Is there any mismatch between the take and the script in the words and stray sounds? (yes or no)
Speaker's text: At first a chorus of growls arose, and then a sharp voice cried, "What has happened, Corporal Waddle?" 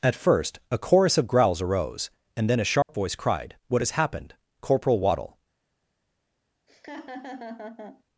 yes